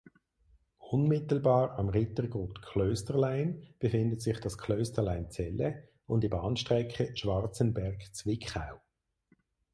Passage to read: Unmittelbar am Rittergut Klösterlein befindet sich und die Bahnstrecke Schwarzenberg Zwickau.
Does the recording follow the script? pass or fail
fail